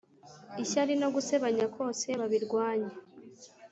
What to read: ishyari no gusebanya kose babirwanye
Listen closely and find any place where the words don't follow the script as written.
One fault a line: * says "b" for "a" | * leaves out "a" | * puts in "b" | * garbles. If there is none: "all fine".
all fine